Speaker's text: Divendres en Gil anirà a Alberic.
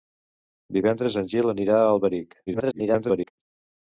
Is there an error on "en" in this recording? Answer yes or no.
no